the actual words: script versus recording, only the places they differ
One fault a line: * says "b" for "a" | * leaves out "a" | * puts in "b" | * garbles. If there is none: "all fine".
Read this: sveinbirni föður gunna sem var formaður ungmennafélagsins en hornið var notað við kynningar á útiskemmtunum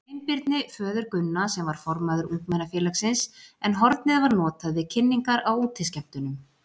all fine